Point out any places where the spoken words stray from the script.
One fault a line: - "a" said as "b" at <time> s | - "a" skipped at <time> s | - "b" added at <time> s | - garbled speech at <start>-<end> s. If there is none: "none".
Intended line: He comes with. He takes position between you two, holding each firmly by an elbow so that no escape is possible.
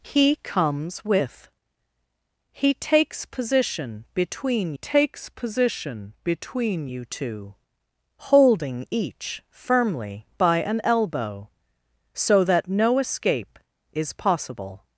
- "takes position between" added at 4.7 s